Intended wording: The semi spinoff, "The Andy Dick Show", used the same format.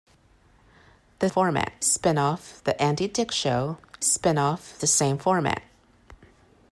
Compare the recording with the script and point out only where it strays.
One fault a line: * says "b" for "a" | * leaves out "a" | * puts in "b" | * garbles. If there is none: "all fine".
* says "format" for "semi"
* says "spinoff" for "used"